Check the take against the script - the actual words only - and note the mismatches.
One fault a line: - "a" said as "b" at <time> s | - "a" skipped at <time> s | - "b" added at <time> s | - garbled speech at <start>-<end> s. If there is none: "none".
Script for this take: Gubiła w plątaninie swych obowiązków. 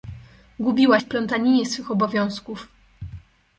none